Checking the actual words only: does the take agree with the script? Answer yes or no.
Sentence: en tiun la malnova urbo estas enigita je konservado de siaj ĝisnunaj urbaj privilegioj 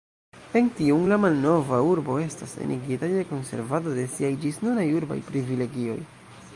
yes